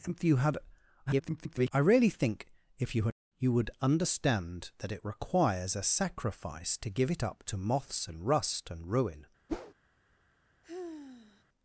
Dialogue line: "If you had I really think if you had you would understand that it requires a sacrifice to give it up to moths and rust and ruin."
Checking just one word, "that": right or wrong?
right